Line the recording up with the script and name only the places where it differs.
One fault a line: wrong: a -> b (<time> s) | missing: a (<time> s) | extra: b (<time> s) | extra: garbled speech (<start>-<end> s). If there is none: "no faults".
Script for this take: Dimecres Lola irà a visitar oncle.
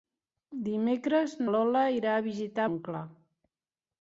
no faults